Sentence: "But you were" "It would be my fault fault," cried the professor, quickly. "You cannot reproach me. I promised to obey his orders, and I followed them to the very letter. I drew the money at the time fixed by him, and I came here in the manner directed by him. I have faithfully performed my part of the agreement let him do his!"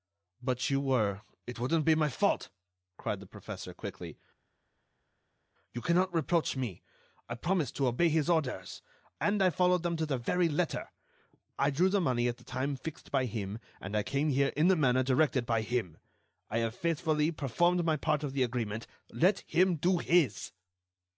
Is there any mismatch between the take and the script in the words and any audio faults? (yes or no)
yes